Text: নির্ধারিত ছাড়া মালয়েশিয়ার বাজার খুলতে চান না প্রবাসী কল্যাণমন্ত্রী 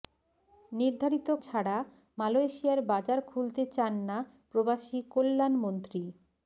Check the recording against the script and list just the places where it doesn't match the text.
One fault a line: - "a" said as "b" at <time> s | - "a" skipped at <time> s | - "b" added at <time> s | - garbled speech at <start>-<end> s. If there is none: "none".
none